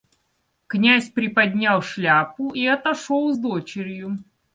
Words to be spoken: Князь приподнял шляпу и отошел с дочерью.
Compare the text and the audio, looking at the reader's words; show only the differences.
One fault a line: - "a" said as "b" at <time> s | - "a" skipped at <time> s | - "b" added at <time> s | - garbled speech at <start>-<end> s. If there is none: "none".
none